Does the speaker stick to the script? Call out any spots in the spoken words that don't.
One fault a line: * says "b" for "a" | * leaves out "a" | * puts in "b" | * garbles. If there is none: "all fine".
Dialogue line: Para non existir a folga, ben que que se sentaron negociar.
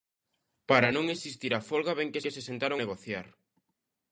all fine